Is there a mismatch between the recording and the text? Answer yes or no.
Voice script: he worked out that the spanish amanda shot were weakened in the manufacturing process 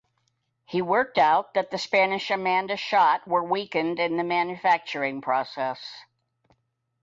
no